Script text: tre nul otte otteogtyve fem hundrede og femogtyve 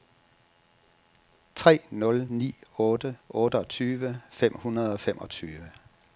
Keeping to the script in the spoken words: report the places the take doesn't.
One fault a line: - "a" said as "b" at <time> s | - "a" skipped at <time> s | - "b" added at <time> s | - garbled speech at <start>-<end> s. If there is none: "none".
- "ni" added at 2.3 s